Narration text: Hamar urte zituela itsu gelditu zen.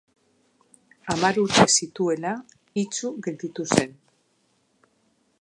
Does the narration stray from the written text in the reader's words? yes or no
no